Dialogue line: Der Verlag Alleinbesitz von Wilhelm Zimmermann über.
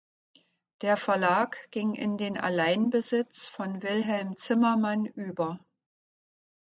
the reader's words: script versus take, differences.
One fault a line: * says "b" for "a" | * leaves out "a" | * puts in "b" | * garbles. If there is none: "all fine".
* puts in "ging in den"